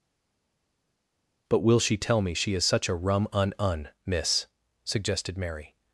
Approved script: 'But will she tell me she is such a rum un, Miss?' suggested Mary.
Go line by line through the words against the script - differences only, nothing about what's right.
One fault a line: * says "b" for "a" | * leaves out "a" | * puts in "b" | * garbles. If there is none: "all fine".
* puts in "un"